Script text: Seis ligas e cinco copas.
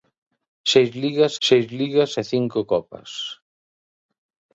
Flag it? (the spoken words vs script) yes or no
yes